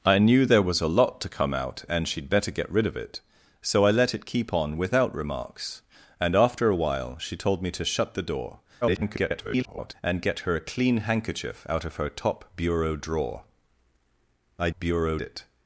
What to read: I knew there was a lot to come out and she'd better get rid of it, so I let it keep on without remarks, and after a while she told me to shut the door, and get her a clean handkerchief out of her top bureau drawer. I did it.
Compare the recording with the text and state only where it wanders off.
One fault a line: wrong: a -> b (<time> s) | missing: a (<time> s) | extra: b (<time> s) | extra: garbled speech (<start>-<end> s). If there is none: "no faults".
extra: garbled speech (8.8-9.9 s)
wrong: did -> bureau (14.8 s)